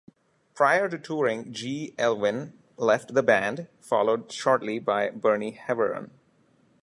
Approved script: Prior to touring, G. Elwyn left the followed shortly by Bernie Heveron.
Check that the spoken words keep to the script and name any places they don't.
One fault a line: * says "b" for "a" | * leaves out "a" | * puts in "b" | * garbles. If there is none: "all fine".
* puts in "band"